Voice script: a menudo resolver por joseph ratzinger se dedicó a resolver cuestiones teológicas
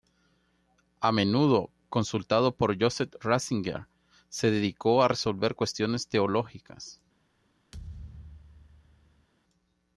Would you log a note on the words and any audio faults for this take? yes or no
yes